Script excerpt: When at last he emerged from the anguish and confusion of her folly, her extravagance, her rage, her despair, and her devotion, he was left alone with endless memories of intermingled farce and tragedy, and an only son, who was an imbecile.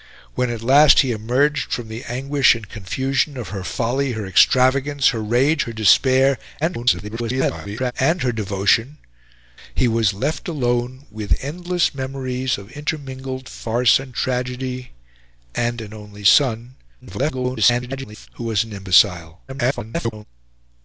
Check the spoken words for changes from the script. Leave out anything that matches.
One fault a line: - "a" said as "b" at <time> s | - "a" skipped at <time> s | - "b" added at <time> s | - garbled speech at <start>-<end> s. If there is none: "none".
- garbled speech at 6.6-7.9 s
- garbled speech at 17.0-18.3 s
- garbled speech at 19.5-20.3 s